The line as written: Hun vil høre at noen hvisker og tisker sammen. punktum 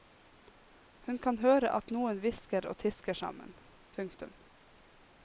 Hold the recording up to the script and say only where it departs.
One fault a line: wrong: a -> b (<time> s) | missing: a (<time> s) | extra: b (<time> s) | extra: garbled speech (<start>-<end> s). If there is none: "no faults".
wrong: vil -> kan (1.2 s)